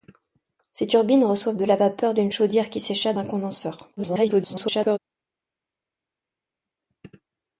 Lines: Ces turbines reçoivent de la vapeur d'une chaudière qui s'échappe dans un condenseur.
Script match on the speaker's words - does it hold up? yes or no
no